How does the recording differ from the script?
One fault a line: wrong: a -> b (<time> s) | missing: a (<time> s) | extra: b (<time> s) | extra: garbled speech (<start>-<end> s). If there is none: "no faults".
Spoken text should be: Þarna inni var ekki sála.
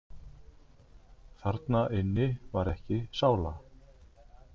no faults